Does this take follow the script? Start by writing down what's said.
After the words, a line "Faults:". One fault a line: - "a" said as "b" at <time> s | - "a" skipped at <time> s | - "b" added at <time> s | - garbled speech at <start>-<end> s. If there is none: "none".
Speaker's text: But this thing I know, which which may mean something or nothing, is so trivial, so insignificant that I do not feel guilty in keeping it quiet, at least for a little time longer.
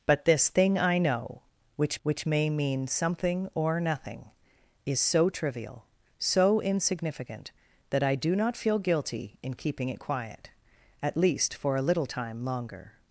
But this thing I know, which which may mean something or nothing, is so trivial, so insignificant that I do not feel guilty in keeping it quiet, at least for a little time longer.
Faults:
none